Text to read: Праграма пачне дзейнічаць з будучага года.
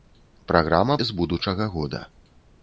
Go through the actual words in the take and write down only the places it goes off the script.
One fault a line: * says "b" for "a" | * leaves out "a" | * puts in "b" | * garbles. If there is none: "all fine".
* leaves out "пачне дзейнічаць"